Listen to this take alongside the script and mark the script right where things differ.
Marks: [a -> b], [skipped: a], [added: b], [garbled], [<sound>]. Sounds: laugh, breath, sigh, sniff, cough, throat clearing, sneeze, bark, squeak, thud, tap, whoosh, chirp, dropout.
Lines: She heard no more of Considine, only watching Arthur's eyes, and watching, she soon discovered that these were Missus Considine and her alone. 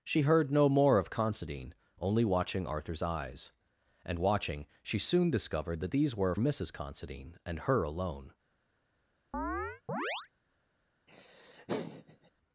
She heard no more of Considine, only watching Arthur's eyes, and watching, she soon discovered that these were Missus Considine and her alone. [chirp] [laugh]